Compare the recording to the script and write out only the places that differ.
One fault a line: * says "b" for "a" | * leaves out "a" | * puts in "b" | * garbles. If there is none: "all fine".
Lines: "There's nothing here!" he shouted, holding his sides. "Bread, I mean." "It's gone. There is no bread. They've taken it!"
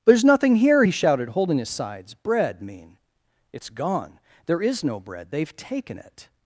* leaves out "I"